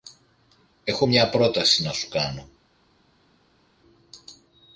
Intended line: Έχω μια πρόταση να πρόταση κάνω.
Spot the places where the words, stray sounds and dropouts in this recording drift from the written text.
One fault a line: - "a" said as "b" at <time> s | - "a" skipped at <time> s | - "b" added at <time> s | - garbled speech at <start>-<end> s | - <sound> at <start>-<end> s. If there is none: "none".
- "πρόταση" said as "σου" at 1.9 s